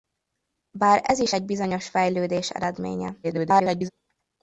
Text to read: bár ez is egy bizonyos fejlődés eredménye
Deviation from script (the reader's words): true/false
true